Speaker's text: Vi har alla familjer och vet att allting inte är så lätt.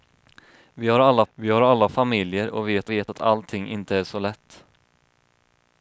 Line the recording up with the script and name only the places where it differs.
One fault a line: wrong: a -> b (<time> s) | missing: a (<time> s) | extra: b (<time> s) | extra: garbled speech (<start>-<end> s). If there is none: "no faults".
extra: vi har alla (1.3 s)
extra: vet (2.9 s)